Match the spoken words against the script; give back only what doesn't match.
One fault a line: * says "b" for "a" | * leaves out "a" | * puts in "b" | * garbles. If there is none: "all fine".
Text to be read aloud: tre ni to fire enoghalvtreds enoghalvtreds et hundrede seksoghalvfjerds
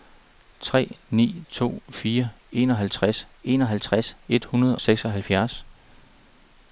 all fine